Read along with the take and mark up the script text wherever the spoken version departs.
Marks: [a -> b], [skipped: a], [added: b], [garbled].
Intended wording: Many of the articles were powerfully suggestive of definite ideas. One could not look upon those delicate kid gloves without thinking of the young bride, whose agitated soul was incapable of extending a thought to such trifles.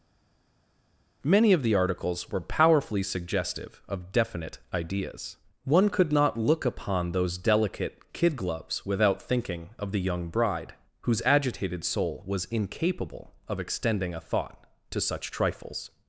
Many of the articles were powerfully suggestive of definite ideas. One could not look upon those delicate kid gloves without thinking of the young bride, whose agitated soul was incapable of extending a thought to such trifles.